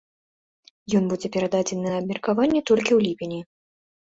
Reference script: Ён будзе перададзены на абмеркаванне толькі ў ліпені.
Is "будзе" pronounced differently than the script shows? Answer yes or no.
no